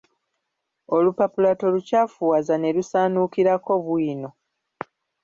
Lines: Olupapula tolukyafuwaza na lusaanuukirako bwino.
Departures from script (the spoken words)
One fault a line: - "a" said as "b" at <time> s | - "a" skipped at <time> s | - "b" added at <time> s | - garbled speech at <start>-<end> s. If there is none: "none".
- "na" said as "ne" at 2.6 s